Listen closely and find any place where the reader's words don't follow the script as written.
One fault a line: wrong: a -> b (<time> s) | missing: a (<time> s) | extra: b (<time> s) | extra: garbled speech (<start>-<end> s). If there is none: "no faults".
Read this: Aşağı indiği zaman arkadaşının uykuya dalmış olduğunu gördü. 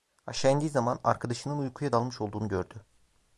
no faults